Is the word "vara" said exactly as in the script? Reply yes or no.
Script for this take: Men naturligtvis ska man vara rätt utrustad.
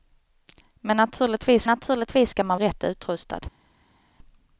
no